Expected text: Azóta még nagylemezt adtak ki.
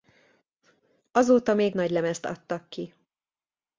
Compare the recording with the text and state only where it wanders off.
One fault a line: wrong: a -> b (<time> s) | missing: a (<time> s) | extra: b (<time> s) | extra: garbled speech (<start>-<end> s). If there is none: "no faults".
no faults